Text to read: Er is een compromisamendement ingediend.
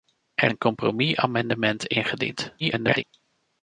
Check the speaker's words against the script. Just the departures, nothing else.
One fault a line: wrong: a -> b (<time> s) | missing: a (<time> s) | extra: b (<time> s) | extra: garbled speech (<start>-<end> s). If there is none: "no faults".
missing: is (0.5 s)
extra: garbled speech (2.6-3.0 s)